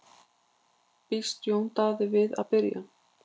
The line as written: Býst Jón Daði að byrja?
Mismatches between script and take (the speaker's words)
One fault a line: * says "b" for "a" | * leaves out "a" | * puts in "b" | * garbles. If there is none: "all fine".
* puts in "við"